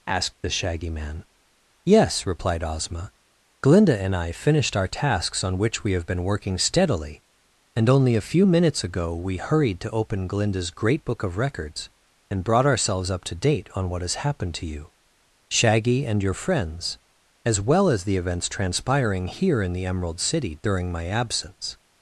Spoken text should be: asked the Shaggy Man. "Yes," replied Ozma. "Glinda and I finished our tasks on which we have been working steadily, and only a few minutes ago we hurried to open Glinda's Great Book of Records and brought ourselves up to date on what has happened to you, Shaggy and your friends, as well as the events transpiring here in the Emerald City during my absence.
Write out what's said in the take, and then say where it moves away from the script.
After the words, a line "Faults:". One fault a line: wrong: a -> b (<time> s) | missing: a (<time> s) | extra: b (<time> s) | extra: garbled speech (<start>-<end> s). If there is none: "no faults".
asked the Shaggy Man. "Yes," replied Ozma. "Glinda and I finished our tasks on which we have been working steadily, and only a few minutes ago we hurried to open Glinda's Great Book of Records and brought ourselves up to date on what has happened to you, Shaggy and your friends, as well as the events transpiring here in the Emerald City during my absence.
Faults:
no faults